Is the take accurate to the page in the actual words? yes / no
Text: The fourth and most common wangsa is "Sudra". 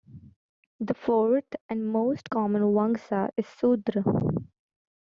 yes